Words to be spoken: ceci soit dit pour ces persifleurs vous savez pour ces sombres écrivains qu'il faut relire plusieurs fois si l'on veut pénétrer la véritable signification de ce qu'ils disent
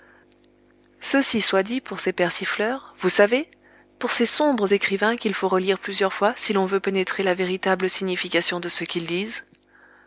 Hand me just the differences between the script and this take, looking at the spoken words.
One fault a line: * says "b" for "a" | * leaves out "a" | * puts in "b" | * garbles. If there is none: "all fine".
all fine